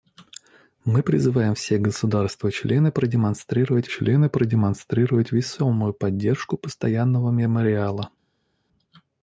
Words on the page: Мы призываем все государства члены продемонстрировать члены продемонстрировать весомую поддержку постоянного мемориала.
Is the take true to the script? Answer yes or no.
yes